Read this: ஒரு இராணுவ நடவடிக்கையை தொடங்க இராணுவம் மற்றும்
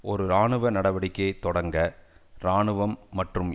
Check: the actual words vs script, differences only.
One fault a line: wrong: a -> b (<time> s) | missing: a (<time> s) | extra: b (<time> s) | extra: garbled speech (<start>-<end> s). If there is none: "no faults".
no faults